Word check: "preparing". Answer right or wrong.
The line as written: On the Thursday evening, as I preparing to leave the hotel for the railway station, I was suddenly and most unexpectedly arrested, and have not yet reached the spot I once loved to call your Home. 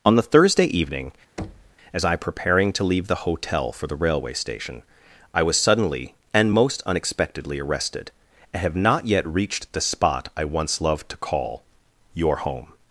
right